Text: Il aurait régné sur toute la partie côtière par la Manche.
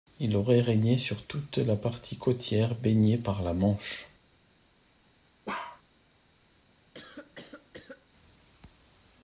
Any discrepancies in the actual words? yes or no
yes